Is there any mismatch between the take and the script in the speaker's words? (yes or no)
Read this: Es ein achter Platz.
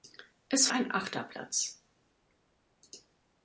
no